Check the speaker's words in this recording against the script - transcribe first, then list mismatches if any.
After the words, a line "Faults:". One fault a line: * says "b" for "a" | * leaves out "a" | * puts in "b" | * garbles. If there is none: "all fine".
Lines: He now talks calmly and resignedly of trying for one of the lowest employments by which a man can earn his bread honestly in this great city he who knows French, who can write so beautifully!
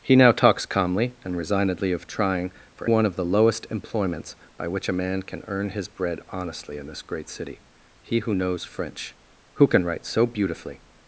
He now talks calmly and resignedly of trying for one of the lowest employments by which a man can earn his bread honestly in this great city he who knows French, who can write so beautifully!
Faults:
all fine